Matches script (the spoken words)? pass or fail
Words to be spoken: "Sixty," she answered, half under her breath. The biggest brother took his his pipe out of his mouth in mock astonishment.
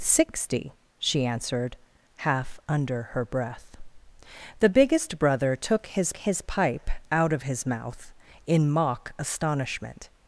pass